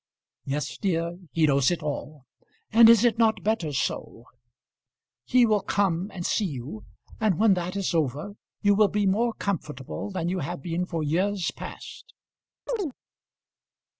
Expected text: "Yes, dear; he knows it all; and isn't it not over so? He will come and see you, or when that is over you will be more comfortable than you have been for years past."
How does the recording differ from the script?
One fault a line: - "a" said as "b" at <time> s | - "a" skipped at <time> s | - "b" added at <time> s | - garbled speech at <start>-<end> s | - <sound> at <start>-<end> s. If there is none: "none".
- "isn't" said as "is" at 2.9 s
- "over" said as "better" at 3.4 s
- "or" said as "and" at 7.2 s
- chirp at 12.7-12.9 s